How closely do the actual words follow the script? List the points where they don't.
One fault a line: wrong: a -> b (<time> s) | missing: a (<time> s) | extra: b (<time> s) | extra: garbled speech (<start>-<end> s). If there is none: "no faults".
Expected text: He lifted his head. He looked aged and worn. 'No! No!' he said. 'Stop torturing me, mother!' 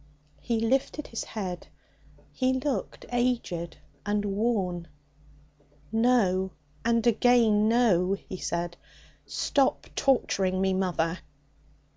extra: And again (6.8 s)